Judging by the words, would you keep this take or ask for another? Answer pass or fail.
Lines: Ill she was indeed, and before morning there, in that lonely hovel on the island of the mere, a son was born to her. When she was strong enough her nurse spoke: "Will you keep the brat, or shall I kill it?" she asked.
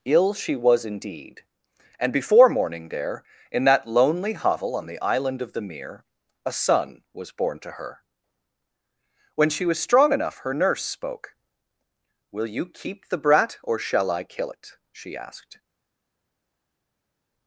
pass